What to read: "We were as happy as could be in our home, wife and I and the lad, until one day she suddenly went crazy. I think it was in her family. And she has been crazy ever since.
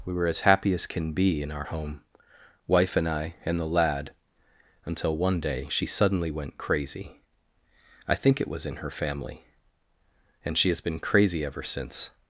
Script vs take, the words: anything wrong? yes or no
yes